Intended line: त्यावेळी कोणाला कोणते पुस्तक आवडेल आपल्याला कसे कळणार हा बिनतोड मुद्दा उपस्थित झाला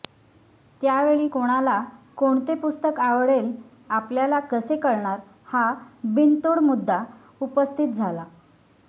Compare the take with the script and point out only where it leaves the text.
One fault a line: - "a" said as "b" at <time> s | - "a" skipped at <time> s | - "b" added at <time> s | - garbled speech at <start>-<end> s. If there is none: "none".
none